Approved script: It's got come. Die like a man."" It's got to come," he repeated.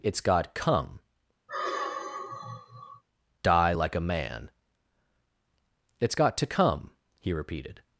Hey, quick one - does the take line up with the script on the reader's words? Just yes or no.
yes